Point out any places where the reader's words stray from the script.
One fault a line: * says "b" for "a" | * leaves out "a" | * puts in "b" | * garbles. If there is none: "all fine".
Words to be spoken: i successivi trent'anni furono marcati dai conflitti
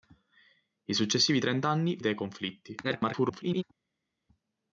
* leaves out "furono marcati"
* garbles